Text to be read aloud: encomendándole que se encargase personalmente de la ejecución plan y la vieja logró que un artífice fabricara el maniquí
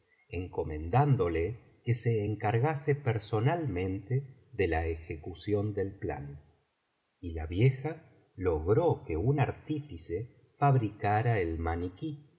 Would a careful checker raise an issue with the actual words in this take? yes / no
yes